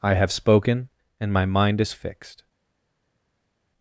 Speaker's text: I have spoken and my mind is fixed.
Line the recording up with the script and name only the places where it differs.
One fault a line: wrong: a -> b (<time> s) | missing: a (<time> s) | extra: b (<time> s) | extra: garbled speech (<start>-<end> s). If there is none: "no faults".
no faults